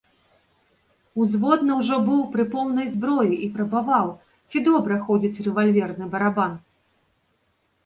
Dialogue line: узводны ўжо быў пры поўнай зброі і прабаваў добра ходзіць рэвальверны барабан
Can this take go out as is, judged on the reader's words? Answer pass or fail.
fail